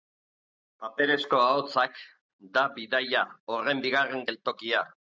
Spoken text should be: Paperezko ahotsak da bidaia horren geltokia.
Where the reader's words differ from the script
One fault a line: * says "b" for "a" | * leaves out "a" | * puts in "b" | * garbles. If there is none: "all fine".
* puts in "bigarren"